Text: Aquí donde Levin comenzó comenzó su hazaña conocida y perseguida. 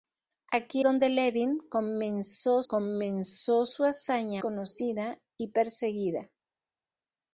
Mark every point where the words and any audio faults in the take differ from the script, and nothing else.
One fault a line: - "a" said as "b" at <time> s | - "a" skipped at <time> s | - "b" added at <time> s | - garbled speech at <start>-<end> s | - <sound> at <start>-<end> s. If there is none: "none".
none